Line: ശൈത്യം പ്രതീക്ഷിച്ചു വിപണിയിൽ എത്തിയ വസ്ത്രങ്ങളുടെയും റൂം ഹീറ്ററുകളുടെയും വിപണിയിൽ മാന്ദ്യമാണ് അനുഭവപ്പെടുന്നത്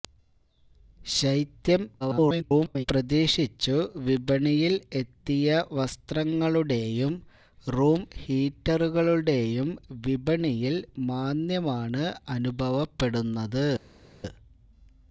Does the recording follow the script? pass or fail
fail